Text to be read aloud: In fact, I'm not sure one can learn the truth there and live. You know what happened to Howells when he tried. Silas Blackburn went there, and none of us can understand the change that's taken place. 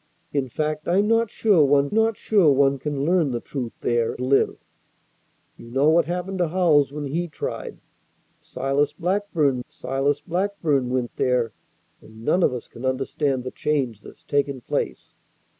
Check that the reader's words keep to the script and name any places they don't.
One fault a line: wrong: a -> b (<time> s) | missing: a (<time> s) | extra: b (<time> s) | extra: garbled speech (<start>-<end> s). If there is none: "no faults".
extra: not sure one (1.9 s)
missing: and (4.2 s)
extra: silas Blackburn (9.7 s)